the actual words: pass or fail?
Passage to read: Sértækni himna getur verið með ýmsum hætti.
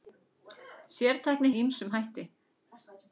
fail